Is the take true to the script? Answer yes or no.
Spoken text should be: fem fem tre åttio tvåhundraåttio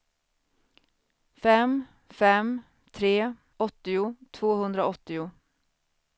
yes